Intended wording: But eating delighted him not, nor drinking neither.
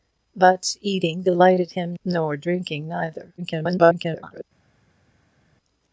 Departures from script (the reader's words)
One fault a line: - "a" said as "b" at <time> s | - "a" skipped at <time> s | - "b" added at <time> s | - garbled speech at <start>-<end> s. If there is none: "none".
- "not" skipped at 1.9 s
- garbled speech at 3.4-4.4 s